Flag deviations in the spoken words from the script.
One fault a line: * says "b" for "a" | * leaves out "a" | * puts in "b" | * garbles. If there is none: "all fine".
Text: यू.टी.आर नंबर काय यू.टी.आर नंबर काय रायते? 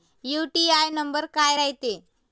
* leaves out "यू.टी.आर नंबर काय"